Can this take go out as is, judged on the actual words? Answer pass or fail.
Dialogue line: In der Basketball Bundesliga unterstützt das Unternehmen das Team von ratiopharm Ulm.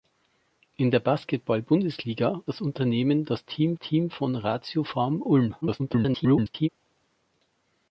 fail